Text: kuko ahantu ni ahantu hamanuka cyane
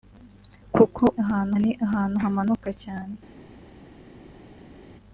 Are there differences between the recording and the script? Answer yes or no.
no